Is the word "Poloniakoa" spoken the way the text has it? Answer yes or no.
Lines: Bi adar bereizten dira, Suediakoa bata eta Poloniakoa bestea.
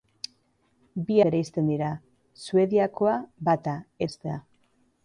no